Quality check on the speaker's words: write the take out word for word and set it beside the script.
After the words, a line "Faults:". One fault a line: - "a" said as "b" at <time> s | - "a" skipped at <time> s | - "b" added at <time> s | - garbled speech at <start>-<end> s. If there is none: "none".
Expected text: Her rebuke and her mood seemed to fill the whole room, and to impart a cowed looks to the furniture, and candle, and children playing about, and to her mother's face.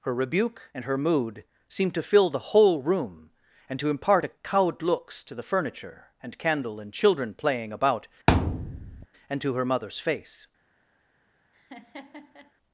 Her rebuke and her mood seemed to fill the whole room, and to impart a cowed looks to the furniture, and candle, and children playing about, and to her mother's face.
Faults:
none